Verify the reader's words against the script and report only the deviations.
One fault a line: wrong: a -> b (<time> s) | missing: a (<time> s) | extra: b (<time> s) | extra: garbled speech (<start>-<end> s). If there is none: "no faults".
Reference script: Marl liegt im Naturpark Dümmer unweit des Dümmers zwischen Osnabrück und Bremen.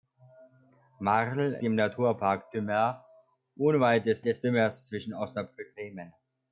missing: liegt (1.6 s)
extra: des (4.2 s)
missing: und (5.8 s)